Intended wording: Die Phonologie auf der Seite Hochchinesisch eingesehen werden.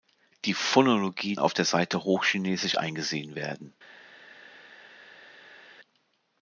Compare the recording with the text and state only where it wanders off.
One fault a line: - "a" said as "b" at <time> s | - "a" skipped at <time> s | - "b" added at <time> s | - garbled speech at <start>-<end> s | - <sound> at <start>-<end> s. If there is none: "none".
none